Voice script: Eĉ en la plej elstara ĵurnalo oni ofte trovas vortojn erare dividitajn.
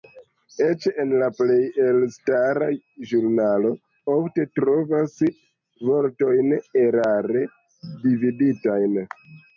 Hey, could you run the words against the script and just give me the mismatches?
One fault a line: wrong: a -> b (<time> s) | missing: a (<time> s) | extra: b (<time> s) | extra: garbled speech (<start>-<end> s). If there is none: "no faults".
missing: oni (3.8 s)